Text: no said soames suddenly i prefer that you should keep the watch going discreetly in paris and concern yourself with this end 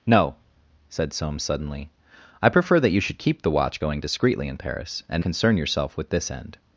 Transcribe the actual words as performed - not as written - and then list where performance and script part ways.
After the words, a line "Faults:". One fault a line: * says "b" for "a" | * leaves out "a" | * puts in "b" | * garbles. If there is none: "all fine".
no said soames suddenly i prefer that you should keep the watch going discreetly in paris and concern yourself with this end
Faults:
all fine